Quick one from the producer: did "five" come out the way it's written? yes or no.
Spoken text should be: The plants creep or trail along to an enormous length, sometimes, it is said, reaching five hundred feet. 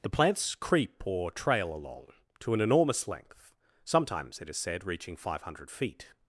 yes